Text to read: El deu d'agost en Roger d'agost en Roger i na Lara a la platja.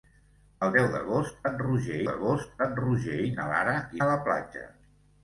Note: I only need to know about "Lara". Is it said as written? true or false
true